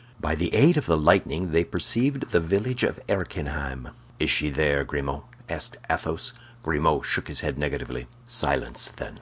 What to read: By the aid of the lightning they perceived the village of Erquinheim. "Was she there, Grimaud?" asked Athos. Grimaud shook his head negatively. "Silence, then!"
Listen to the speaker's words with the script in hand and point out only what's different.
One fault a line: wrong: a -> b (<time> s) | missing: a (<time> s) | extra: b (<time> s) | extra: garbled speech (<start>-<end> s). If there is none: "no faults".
wrong: Was -> Is (4.2 s)